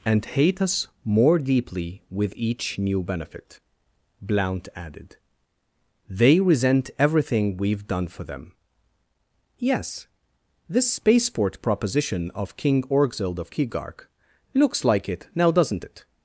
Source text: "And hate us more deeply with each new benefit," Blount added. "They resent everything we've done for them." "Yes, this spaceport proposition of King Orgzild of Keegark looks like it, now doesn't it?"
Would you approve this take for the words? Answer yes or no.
yes